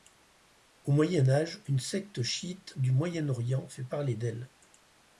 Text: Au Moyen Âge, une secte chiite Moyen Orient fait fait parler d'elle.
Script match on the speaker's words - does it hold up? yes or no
no